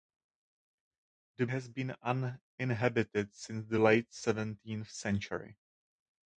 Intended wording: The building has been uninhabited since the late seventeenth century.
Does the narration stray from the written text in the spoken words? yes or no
yes